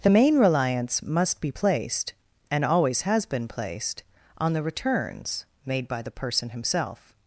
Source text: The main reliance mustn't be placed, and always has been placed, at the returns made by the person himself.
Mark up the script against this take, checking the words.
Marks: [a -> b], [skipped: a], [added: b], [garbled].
The main reliance [mustn't -> must] be placed, and always has been placed, [at -> on] the returns made by the person himself.